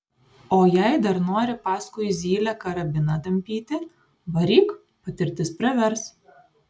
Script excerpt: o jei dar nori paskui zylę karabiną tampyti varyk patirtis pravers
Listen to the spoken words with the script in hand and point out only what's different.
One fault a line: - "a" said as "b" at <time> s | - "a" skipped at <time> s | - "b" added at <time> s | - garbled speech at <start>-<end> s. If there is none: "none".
none